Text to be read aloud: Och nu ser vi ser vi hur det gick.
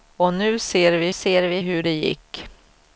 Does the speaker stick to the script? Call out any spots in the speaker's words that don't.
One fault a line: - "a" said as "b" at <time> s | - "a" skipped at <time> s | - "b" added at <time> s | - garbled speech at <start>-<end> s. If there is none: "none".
none